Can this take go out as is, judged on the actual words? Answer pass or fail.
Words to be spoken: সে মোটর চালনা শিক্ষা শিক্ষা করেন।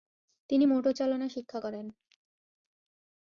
fail